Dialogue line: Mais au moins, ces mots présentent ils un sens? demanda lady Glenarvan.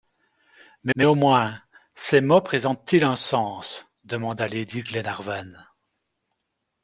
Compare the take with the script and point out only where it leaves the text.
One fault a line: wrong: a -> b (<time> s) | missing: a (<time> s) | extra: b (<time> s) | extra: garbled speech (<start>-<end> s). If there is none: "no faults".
extra: mais (0.9 s)